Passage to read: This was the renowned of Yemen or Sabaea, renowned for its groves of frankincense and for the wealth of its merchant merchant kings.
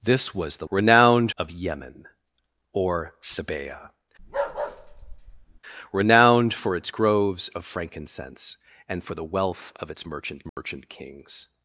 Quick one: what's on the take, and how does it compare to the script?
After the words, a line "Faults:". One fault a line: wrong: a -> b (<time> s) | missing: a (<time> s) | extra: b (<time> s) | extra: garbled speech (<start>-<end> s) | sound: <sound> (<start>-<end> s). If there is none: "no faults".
This was the renowned of Yemen or Sabaea, renowned for its groves of frankincense and for the wealth of its merchant merchant kings.
Faults:
sound: bark (4.2-5.6 s)
sound: dropout (10.5-10.6 s)